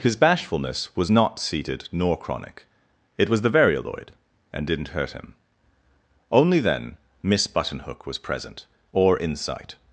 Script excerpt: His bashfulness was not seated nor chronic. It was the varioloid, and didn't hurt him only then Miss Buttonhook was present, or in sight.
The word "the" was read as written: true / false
true